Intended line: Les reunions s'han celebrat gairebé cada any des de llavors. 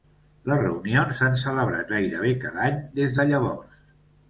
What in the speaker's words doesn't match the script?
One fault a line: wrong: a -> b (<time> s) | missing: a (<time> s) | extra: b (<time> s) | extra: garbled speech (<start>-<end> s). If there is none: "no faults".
no faults